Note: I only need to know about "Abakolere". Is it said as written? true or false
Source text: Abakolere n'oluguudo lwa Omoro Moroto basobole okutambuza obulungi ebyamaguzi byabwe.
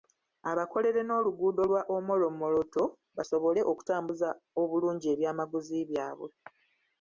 true